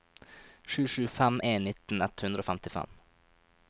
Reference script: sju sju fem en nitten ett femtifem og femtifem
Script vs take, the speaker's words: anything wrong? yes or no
yes